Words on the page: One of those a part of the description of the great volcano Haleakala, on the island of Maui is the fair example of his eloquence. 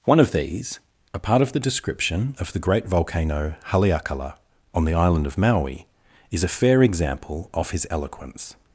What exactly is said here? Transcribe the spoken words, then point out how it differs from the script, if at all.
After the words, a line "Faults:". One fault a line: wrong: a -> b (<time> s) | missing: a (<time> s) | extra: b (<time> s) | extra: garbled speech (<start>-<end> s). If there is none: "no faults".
One of these a part of the description of the great volcano Haleakala, on the island of Maui is a fair example of his eloquence.
Faults:
wrong: those -> these (0.3 s)
wrong: the -> a (6.4 s)